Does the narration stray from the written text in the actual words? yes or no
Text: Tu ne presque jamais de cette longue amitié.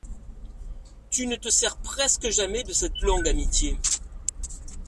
yes